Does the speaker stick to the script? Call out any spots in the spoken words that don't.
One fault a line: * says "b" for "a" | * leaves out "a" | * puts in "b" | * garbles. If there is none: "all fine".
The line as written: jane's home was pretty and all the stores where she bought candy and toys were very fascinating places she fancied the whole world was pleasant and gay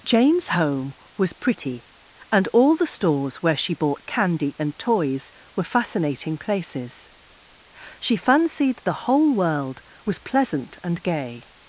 * leaves out "very"